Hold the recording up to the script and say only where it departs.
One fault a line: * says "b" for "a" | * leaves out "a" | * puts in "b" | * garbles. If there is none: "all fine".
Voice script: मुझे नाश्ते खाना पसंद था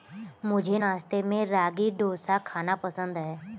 * puts in "में रागी डोसा"
* says "है" for "था"